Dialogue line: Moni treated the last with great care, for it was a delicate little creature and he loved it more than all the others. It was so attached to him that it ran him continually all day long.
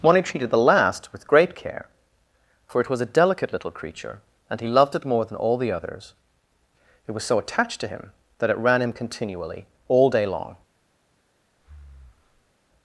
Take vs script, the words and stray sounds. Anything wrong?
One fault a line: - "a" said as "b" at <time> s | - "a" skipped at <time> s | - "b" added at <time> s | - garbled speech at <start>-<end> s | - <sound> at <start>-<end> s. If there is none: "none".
- breath at 11.6-12.5 s